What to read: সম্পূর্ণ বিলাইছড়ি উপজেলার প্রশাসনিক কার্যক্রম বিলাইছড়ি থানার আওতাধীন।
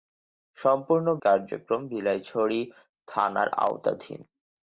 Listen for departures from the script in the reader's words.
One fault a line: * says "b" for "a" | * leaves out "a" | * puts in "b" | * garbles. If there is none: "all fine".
* leaves out "বিলাইছড়ি উপজেলার প্রশাসনিক"